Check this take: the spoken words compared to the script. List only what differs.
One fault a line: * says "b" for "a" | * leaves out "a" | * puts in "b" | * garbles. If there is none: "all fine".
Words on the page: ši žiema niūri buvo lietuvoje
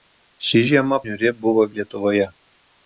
all fine